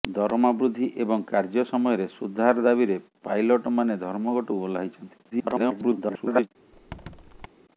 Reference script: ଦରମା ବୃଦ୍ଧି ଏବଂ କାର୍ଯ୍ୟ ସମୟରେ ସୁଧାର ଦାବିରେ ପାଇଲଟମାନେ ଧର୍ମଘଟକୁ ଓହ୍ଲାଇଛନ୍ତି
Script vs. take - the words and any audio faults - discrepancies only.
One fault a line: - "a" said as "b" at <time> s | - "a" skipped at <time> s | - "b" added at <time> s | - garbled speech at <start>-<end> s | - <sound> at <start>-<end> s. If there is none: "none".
- garbled speech at 5.3-6.5 s
- squeak at 6.7-7.5 s